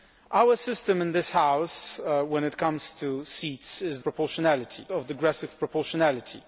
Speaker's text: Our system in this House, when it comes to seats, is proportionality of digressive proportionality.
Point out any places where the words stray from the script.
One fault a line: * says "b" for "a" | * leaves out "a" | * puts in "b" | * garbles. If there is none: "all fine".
all fine